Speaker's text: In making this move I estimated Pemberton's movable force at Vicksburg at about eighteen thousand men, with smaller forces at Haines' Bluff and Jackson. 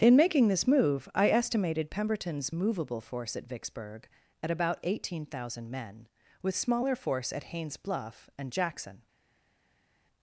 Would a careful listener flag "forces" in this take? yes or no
yes